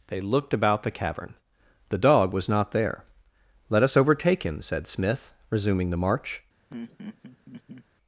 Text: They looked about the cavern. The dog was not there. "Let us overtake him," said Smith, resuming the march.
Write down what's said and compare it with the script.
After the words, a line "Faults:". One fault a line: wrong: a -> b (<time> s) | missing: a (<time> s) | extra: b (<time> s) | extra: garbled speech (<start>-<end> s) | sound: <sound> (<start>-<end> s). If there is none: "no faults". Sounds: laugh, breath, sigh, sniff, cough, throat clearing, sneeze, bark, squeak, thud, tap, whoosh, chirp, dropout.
They looked about the cavern. The dog was not there. "Let us overtake him," said Smith, resuming the march.
Faults:
sound: laugh (6.7-7.8 s)